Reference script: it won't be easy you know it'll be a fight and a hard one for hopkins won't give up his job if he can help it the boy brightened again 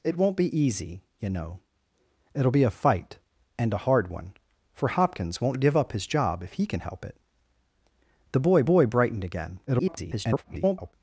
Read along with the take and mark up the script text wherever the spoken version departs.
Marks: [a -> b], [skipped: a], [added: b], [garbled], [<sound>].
it won't be easy you know it'll be a fight and a hard one for hopkins won't give up his job if he can help it the boy [added: boy] brightened again [garbled]